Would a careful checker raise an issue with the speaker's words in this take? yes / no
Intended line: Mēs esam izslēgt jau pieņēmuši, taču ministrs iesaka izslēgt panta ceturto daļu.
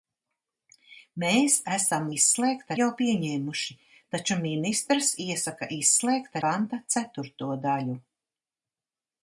no